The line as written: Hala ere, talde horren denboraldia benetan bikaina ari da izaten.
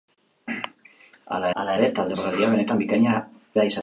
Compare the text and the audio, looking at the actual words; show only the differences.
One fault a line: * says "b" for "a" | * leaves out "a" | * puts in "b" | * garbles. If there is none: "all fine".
* puts in "hala"
* leaves out "horren"
* leaves out "ari"